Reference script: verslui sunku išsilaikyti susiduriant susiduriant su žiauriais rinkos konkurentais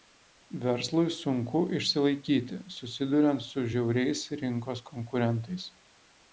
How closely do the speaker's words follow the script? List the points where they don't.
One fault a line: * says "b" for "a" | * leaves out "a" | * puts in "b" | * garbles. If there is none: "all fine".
* leaves out "susiduriant"